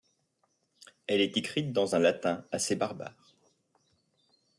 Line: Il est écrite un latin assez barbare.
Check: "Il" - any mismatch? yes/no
yes